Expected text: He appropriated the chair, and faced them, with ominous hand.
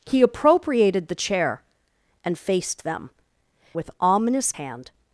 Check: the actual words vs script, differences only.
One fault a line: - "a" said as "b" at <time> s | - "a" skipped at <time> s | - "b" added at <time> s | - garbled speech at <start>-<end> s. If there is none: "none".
none